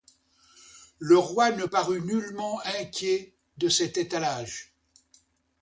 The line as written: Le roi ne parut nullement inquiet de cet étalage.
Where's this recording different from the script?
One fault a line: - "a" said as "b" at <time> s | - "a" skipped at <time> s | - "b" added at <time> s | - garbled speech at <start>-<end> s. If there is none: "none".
none